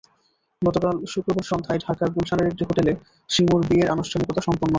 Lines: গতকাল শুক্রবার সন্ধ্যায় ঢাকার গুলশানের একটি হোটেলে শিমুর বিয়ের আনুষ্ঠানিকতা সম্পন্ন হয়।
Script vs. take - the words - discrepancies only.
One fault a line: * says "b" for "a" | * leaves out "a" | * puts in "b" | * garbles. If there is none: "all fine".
all fine